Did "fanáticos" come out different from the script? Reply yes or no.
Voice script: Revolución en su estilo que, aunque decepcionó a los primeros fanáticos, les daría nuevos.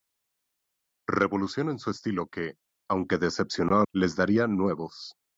yes